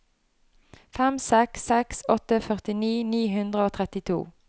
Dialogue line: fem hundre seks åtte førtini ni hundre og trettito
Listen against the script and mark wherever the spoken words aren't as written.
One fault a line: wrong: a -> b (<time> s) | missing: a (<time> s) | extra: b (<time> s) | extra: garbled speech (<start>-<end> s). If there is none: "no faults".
wrong: hundre -> seks (1.3 s)